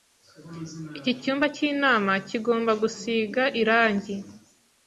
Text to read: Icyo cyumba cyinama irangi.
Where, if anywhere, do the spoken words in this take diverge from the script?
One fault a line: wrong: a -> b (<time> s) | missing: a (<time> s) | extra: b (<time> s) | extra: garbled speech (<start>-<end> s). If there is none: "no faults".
wrong: Icyo -> Iki (1.0 s)
extra: kigomba gusiga (2.3 s)